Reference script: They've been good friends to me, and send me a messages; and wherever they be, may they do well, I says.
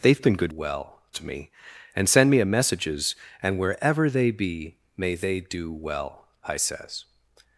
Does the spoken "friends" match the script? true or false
false